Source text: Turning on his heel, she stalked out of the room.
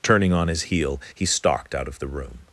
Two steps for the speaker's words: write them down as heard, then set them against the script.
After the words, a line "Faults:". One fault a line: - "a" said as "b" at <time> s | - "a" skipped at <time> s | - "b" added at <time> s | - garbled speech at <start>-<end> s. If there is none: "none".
Turning on his heel, he stalked out of the room.
Faults:
- "she" said as "he" at 1.1 s